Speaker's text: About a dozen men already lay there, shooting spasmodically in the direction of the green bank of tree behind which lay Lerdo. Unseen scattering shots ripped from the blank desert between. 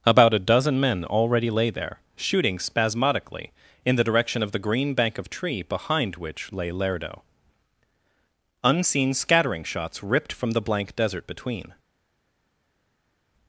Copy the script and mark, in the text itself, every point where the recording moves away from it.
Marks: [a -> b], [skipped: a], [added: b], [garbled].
About a dozen men already lay there, shooting spasmodically in the direction of the green bank of tree behind which lay Lerdo. Unseen scattering shots ripped from the blank desert between.